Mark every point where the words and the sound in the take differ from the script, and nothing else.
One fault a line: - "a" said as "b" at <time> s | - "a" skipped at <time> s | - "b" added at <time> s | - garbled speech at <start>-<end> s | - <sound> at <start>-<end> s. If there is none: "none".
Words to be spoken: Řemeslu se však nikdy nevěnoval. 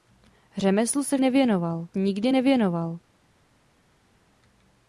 - "však" said as "nevěnoval" at 1.2 s